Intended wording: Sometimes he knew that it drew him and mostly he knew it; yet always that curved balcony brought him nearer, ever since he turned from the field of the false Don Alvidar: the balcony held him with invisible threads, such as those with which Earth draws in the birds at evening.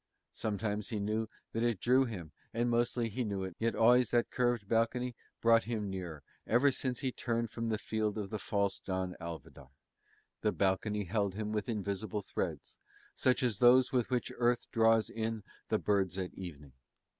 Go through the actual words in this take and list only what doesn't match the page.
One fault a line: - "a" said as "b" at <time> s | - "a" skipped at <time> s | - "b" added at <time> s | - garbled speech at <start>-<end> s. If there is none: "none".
none